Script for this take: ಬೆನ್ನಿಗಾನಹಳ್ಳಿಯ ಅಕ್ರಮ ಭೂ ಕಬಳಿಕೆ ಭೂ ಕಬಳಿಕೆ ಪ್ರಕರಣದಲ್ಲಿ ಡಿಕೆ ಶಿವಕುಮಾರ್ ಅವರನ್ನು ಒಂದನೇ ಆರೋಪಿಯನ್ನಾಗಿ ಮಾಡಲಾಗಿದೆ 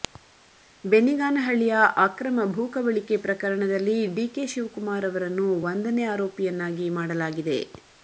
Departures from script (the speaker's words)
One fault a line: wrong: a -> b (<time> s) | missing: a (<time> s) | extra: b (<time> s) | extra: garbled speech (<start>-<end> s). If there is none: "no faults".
missing: ಭೂ ಕಬಳಿಕೆ (3.2 s)